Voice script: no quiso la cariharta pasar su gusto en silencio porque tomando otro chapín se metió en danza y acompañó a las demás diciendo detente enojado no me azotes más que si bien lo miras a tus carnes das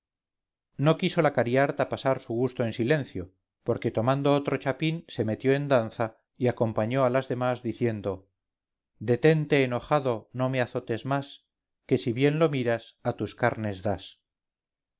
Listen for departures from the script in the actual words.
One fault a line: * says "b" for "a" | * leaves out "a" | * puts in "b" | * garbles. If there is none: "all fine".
all fine